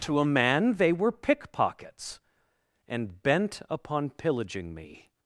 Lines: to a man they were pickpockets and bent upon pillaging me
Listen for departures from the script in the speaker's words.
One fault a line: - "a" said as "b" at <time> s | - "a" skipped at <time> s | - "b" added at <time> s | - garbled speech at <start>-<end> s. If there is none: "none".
none